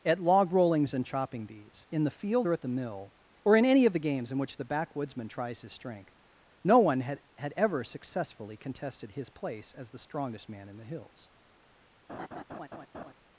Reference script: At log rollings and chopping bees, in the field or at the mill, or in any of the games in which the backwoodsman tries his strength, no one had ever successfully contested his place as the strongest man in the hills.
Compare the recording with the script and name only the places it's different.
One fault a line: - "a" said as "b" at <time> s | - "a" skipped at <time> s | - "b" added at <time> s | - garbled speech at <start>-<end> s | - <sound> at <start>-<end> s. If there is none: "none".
- "had" added at 7.4 s
- laugh at 12.1-13.1 s